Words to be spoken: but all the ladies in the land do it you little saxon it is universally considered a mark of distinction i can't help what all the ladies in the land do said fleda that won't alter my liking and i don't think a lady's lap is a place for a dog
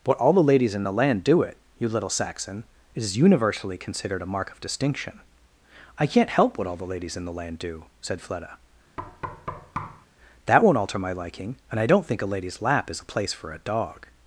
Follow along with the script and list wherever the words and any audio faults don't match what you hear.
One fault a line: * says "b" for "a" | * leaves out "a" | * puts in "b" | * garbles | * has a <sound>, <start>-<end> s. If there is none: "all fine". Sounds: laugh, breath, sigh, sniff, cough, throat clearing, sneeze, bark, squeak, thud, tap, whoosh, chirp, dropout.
* has a thud, 9.0-10.1 s